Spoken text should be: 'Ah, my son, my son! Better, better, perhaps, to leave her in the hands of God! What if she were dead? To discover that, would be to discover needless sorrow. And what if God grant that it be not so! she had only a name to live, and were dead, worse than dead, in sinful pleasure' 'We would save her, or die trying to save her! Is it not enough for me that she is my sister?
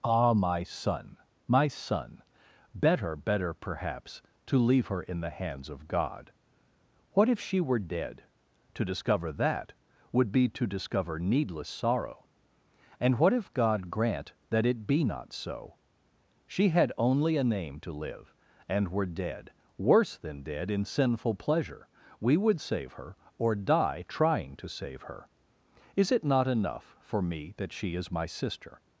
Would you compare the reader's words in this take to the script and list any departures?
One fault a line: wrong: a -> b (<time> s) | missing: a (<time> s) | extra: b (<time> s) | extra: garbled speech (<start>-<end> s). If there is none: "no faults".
no faults